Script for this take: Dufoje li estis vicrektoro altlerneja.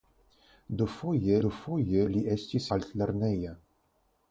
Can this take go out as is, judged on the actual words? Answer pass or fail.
fail